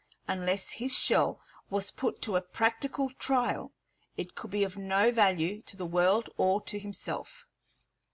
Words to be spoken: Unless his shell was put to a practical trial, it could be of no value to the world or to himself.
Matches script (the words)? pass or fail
pass